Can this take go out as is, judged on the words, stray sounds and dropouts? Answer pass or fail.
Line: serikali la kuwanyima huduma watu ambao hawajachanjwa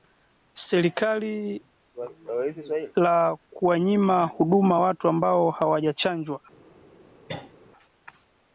fail